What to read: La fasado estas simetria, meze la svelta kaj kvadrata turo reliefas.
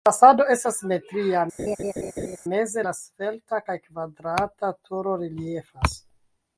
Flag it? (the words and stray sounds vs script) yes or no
yes